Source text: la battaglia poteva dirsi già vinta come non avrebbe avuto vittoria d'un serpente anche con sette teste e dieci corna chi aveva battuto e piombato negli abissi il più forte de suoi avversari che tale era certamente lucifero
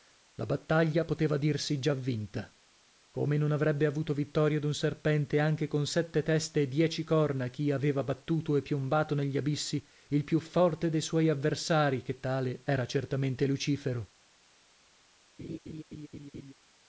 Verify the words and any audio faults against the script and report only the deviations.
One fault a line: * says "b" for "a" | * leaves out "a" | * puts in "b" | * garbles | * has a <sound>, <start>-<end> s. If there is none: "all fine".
* has a laugh, 15.4-16.5 s